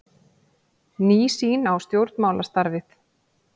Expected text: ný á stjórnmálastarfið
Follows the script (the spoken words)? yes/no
no